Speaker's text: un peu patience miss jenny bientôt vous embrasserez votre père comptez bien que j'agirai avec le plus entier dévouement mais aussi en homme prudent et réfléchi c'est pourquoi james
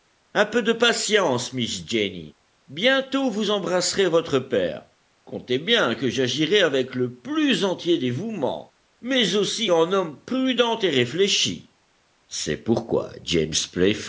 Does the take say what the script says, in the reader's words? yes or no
no